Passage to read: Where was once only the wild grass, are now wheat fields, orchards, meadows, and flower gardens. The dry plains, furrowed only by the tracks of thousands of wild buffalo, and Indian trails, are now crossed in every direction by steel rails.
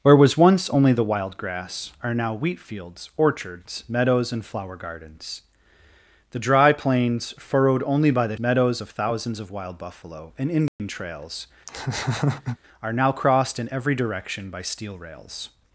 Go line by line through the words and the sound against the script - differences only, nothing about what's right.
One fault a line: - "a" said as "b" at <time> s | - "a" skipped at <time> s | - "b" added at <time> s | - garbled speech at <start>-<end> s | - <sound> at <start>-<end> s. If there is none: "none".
- "tracks" said as "meadows" at 8.4 s
- dropout at 10.7-10.8 s
- laugh at 11.7-12.6 s